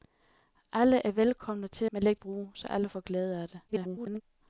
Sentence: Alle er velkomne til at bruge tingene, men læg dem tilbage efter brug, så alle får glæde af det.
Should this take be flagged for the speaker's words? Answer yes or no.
yes